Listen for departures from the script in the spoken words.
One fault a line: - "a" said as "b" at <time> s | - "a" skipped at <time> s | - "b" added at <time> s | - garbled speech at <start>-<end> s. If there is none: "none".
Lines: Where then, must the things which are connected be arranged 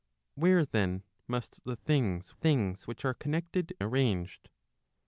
- "things" added at 2.3 s
- "be" skipped at 3.8 s